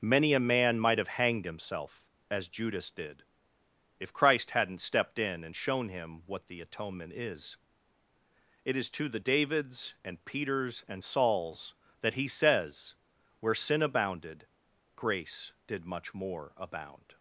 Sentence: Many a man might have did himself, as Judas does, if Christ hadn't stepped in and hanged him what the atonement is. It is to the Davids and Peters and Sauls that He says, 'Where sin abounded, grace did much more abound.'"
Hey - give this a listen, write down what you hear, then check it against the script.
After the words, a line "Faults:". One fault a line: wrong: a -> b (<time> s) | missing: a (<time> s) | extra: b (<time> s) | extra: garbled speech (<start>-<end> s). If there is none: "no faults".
Many a man might have hanged himself, as Judas did, if Christ hadn't stepped in and shown him what the atonement is. It is to the Davids and Peters and Sauls that He says, 'Where sin abounded, grace did much more abound.'"
Faults:
wrong: did -> hanged (1.1 s)
wrong: does -> did (2.9 s)
wrong: hanged -> shown (5.5 s)